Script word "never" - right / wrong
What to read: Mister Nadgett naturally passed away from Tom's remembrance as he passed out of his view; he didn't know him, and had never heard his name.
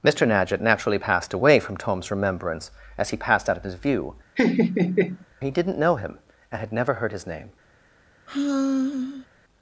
right